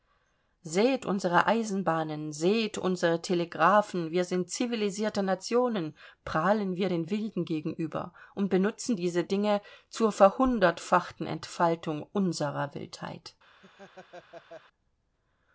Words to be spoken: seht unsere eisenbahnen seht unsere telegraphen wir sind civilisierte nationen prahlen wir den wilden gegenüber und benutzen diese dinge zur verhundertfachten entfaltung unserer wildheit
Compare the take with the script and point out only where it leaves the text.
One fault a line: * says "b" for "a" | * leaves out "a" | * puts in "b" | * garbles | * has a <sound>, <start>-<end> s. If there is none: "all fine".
* has a laugh, 13.6-14.6 s